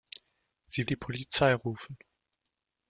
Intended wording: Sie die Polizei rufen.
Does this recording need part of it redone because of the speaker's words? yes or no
no